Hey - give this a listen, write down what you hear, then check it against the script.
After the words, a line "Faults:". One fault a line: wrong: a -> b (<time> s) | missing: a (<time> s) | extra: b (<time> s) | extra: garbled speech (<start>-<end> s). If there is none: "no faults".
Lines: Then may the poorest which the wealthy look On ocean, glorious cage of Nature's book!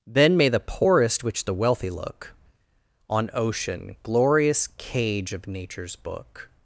Then may the poorest which the wealthy look On ocean, glorious cage of Nature's book!
Faults:
no faults